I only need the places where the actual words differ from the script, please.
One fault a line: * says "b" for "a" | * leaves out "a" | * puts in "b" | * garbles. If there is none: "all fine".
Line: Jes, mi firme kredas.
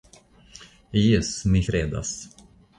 * leaves out "firme"